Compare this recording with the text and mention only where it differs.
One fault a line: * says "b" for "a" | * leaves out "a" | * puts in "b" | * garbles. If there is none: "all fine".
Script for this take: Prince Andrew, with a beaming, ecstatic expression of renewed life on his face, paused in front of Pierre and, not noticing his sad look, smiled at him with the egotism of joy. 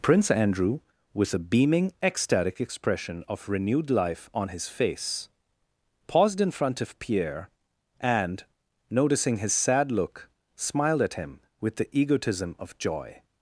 * leaves out "not"